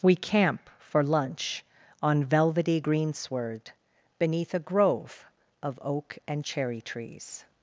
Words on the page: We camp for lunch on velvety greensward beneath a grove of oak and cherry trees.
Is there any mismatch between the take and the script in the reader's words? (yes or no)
no